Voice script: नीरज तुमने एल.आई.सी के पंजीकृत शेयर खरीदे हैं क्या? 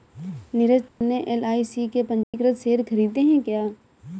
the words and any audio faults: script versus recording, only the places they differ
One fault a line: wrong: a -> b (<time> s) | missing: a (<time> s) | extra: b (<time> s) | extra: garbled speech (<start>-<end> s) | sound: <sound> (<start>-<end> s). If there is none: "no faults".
sound: dropout (0.9-1.0 s)
sound: dropout (2.2-2.3 s)